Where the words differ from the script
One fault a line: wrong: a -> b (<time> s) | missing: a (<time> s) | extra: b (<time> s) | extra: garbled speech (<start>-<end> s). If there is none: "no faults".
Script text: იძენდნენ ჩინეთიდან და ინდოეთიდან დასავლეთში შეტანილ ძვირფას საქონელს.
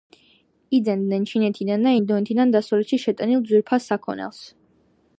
no faults